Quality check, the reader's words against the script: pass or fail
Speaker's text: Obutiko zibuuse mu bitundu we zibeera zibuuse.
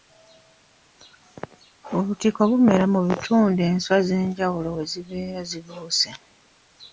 fail